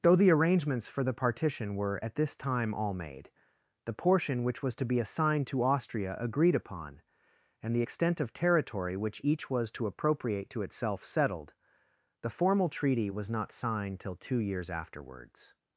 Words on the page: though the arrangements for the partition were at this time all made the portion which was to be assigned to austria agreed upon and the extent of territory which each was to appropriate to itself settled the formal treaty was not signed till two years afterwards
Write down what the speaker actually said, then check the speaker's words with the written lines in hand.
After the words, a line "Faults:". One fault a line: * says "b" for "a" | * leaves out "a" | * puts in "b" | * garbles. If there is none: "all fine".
though the arrangements for the partition were at this time all made the portion which was to be assigned to austria agreed upon and the extent of territory which each was to appropriate to itself settled the formal treaty was not signed till two years afterwards
Faults:
all fine